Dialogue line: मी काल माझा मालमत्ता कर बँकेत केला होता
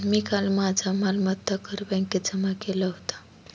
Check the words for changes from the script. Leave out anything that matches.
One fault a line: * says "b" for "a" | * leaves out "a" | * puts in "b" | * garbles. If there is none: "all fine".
* puts in "जमा"